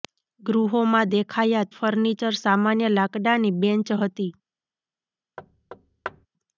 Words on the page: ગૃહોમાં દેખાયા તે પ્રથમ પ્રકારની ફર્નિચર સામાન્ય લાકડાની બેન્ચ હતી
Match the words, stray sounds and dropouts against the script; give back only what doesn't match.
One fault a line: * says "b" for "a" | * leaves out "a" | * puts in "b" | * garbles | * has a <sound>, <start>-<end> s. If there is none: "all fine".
* leaves out "તે પ્રથમ પ્રકારની"
* has a thud, 5.4-6.3 s